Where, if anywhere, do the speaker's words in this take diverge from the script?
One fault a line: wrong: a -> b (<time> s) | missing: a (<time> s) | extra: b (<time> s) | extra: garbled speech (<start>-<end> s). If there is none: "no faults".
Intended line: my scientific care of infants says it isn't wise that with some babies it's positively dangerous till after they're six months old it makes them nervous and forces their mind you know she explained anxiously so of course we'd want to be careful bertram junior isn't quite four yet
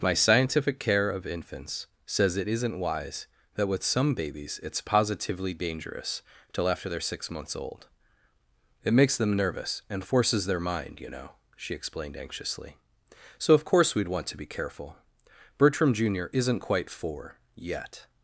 no faults